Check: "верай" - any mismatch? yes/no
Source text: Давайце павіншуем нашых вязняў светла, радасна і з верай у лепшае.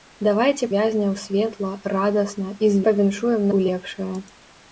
yes